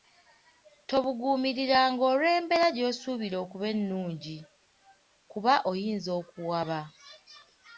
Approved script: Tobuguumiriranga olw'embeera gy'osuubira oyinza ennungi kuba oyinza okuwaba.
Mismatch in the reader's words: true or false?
true